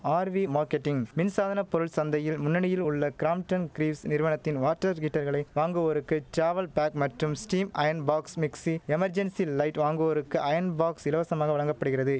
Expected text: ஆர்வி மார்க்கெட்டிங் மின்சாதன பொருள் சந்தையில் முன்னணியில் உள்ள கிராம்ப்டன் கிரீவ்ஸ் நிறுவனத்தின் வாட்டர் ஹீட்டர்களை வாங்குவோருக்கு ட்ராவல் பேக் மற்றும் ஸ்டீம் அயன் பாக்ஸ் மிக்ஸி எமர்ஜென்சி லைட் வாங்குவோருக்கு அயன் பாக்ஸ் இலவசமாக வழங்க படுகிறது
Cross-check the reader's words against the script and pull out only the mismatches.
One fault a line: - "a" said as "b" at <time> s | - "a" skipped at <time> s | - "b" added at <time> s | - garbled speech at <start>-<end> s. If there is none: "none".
none